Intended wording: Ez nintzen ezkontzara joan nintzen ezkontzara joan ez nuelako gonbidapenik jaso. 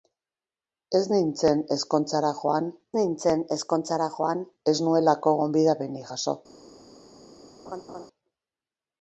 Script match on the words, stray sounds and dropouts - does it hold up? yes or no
no